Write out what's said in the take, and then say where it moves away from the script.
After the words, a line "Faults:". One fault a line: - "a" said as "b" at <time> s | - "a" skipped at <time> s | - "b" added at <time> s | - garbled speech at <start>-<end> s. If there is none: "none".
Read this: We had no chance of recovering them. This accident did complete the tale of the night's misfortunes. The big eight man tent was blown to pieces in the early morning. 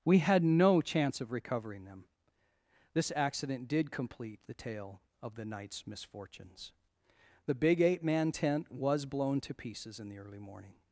We had no chance of recovering them. This accident did complete the tale of the night's misfortunes. The big eight man tent was blown to pieces in the early morning.
Faults:
none